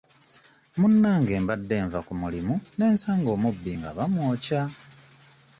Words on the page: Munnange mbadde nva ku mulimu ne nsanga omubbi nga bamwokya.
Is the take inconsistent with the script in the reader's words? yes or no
no